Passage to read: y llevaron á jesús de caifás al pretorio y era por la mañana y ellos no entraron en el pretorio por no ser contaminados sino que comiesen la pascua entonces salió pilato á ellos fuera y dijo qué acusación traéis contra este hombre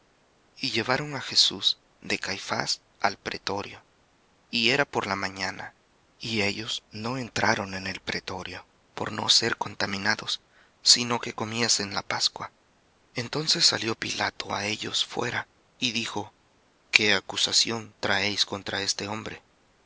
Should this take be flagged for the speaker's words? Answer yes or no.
no